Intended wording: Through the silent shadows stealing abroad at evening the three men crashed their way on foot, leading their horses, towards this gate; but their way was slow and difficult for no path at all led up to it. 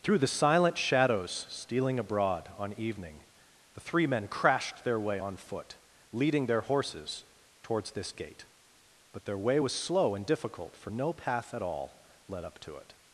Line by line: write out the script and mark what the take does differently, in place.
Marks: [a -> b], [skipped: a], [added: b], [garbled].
Through the silent shadows stealing abroad [at -> on] evening the three men crashed their way on foot, leading their horses, towards this gate; but their way was slow and difficult for no path at all led up to it.